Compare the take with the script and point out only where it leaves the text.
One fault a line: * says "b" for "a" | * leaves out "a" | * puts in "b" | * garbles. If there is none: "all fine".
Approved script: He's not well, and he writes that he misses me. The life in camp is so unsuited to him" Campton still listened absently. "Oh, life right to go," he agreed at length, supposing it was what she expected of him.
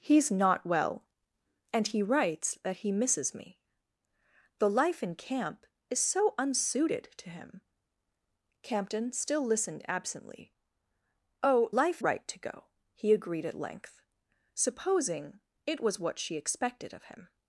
all fine